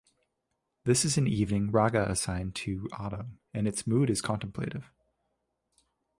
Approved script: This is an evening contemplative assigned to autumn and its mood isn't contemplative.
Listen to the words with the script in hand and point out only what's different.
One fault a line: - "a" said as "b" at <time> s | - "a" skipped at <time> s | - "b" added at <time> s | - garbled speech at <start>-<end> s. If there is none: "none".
- "contemplative" said as "raga" at 1.7 s
- "isn't" said as "is" at 4.1 s